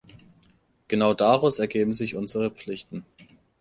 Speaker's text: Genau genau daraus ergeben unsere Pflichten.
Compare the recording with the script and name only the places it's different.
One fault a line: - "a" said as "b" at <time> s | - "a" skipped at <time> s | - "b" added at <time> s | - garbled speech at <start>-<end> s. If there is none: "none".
- "genau" skipped at 1.1 s
- "sich" added at 1.9 s